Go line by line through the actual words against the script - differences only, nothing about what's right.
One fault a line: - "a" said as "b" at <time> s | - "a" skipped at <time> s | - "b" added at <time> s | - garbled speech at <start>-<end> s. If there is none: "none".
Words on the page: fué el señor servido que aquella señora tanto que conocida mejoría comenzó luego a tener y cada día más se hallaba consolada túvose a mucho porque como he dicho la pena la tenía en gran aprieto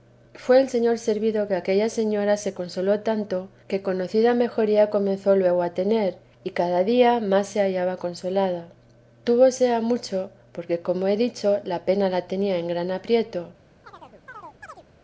- "se consoló" added at 2.4 s